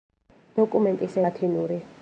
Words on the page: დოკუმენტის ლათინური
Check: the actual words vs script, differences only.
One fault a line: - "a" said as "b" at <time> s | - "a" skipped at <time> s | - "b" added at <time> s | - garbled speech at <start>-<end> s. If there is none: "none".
none